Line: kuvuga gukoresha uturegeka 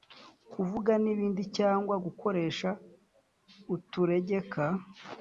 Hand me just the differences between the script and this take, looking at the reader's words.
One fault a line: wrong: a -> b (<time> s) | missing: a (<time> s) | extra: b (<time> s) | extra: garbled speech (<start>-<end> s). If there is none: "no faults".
extra: n'ibindi cyangwa (1.0 s)